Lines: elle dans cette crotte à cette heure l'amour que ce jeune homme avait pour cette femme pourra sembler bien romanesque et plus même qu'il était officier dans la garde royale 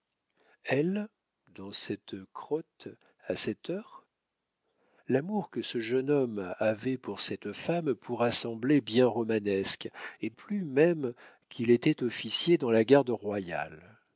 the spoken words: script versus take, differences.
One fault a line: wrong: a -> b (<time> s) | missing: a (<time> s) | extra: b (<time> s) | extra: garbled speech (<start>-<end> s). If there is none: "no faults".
no faults